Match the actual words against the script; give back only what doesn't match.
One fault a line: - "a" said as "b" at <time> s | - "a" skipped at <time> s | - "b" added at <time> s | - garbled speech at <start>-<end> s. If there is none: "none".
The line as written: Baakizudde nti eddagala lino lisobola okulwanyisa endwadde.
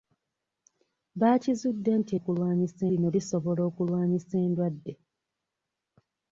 - "eddagala" said as "okulwanyisa" at 2.2 s